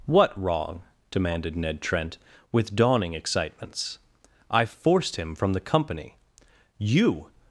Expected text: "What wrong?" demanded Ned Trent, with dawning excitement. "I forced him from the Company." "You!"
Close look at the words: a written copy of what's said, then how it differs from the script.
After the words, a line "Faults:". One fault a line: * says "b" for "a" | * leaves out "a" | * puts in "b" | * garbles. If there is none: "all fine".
"What wrong?" demanded Ned Trent, with dawning excitements. "I forced him from the Company." "You!"
Faults:
* says "excitements" for "excitement"